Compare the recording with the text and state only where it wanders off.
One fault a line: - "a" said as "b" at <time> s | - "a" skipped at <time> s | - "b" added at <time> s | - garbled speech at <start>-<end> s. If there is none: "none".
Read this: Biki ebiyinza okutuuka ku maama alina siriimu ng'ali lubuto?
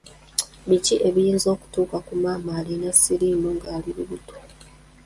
none